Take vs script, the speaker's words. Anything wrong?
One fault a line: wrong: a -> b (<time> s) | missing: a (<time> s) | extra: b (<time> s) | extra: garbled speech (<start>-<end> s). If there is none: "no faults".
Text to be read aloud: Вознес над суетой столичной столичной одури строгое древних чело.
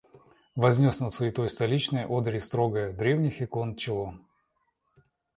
missing: столичной (2.0 s)
extra: икон (3.4 s)